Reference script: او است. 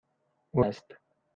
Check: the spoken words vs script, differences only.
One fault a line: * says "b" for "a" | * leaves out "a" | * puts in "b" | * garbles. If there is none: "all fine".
all fine